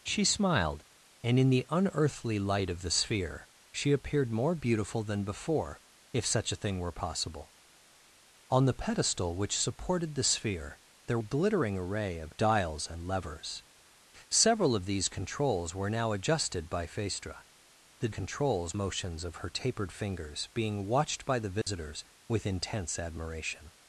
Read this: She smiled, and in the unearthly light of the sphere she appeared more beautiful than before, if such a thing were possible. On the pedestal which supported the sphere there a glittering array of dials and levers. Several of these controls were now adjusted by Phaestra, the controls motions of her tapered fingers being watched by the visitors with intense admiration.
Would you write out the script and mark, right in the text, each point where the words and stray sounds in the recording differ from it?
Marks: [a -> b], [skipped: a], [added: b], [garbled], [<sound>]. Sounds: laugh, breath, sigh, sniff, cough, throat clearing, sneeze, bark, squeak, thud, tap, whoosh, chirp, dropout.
She smiled, and in the unearthly light of the sphere she appeared more beautiful than before, if such a thing were possible. On the pedestal which supported the sphere there a glittering array of dials and levers. Several of these controls were now adjusted by Phaestra, the controls motions of her tapered fingers being watched by the visitors [dropout] with intense admiration.